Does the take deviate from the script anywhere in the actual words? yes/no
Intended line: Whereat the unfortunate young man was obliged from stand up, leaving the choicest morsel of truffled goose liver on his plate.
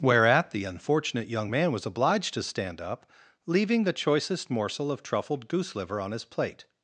yes